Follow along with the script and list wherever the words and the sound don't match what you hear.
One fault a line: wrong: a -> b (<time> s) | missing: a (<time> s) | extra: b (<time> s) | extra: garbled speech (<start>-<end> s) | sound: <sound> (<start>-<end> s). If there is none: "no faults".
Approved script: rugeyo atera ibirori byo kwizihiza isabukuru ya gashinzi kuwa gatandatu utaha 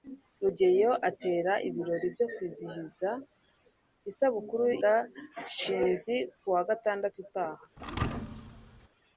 missing: ya (4.7 s)
sound: thud (7.8-8.9 s)